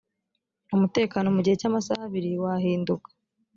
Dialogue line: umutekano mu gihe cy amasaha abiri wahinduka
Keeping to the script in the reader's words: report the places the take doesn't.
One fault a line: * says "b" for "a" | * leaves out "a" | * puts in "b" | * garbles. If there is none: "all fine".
all fine